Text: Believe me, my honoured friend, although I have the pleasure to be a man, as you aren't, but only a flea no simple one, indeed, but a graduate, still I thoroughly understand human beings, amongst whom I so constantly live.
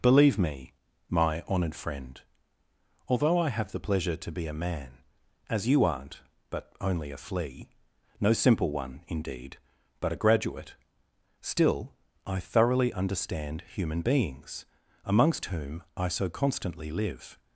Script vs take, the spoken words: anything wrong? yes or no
no